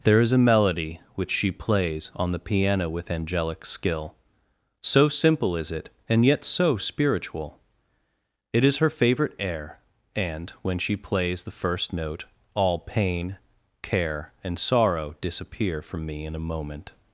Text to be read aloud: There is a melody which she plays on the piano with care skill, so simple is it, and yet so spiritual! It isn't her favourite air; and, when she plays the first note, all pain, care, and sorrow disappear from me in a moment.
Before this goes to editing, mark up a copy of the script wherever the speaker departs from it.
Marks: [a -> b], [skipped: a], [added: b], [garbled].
There is a melody which she plays on the piano with [care -> angelic] skill, so simple is it, and yet so spiritual! It [isn't -> is] her favourite air; and, when she plays the first note, all pain, care, and sorrow disappear from me in a moment.